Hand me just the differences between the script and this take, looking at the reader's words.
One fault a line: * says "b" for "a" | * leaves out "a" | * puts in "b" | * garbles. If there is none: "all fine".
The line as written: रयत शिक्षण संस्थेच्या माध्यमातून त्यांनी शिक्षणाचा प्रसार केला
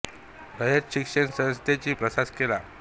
* leaves out "माध्यमातून त्यांनी शिक्षणाचा"